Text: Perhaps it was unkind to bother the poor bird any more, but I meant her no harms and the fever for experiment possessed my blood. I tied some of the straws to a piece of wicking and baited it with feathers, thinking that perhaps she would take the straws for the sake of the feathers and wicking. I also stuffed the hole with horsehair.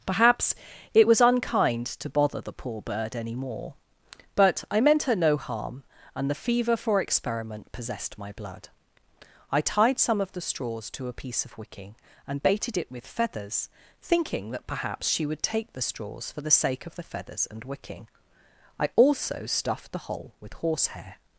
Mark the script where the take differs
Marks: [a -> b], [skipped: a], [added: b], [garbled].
Perhaps it was unkind to bother the poor bird any more, but I meant her no [harms -> harm] and the fever for experiment possessed my blood. I tied some of the straws to a piece of wicking and baited it with feathers, thinking that perhaps she would take the straws for the sake of the feathers and wicking. I also stuffed the hole with horsehair.